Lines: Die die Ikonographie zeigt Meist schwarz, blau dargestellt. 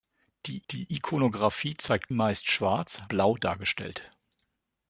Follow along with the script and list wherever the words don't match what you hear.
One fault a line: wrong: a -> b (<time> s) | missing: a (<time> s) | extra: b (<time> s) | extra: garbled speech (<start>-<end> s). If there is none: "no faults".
no faults